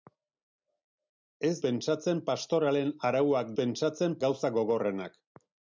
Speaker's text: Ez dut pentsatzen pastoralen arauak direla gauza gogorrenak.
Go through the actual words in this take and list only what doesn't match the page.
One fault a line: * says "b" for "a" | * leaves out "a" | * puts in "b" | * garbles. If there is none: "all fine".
* leaves out "dut"
* says "pentsatzen" for "direla"